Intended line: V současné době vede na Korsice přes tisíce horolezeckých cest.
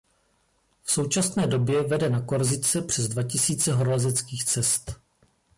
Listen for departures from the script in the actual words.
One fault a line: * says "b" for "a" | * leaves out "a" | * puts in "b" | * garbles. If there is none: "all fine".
* puts in "dva"